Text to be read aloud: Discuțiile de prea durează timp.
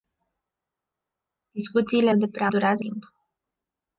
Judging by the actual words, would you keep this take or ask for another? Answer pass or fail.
pass